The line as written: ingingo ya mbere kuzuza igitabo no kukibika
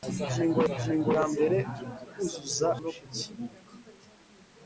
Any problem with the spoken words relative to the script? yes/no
yes